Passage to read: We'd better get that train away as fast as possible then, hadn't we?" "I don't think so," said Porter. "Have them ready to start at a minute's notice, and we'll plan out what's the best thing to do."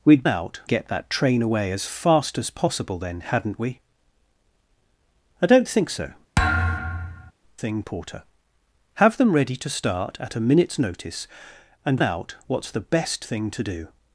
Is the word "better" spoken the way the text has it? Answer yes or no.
no